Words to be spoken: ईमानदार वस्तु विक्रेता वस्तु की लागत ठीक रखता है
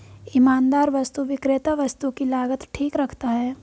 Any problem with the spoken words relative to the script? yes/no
no